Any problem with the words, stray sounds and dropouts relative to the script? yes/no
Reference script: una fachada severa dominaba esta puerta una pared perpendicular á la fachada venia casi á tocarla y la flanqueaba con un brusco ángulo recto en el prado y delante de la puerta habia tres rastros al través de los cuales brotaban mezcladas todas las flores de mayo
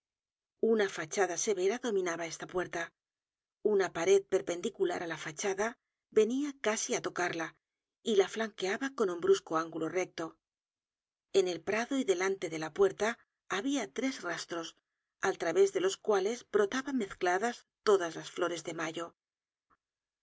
no